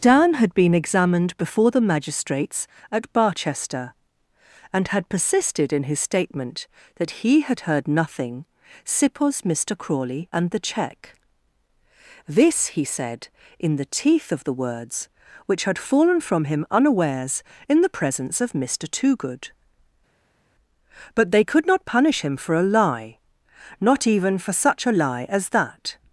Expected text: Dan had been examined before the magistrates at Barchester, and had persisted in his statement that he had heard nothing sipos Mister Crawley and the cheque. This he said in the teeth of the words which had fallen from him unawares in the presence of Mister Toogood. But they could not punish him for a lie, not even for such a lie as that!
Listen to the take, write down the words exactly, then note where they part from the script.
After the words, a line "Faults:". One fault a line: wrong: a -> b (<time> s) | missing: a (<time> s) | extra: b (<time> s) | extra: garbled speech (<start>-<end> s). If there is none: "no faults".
Dan had been examined before the magistrates at Barchester, and had persisted in his statement that he had heard nothing sipos Mister Crawley and the cheque. This he said in the teeth of the words which had fallen from him unawares in the presence of Mister Toogood. But they could not punish him for a lie, not even for such a lie as that!
Faults:
no faults